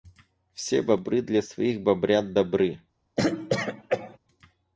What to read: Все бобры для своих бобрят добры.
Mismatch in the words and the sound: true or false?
true